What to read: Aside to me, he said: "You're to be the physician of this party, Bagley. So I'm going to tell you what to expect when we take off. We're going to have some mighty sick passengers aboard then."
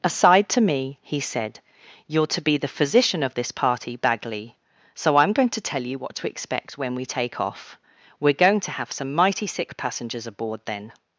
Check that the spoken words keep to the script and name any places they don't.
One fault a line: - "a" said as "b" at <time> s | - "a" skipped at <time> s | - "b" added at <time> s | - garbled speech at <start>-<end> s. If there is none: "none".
none